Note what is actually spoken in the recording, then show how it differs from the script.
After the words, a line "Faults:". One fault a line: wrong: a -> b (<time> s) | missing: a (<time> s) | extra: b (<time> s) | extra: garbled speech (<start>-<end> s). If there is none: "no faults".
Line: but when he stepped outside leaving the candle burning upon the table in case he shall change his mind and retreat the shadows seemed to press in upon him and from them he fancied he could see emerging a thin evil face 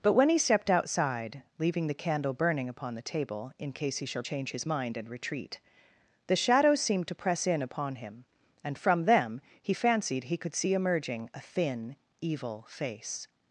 but when he stepped outside leaving the candle burning upon the table in case he shall change his mind and retreat the shadows seemed to press in upon him and from them he fancied he could see emerging a thin evil face
Faults:
no faults